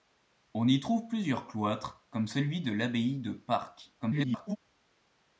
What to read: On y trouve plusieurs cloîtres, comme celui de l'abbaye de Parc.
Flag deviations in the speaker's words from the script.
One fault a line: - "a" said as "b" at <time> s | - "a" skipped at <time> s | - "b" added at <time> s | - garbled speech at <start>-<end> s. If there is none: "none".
- garbled speech at 4.0-4.6 s